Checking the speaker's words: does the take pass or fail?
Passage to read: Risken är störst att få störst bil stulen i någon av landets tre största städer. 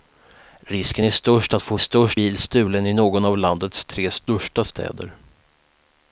pass